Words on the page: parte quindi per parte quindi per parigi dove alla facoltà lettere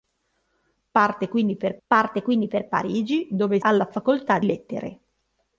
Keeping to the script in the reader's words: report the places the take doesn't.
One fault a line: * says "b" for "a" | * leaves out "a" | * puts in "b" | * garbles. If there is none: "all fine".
all fine